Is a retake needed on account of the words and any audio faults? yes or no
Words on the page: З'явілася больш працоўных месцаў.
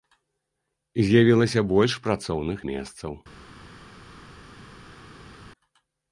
no